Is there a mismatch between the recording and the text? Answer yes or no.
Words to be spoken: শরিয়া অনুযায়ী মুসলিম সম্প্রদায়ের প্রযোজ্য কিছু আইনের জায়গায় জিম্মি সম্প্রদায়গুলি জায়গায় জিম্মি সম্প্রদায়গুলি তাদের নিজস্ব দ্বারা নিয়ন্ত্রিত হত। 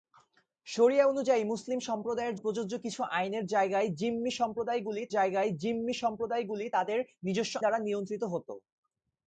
no